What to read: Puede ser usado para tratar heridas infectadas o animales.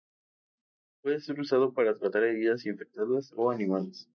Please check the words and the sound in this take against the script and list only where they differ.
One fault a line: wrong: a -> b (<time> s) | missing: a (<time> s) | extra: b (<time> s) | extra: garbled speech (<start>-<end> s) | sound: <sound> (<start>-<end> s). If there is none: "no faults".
no faults